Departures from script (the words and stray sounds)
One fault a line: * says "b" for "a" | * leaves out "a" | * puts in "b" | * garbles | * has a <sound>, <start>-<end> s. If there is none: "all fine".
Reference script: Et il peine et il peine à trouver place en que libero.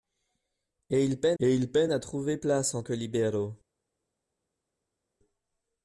all fine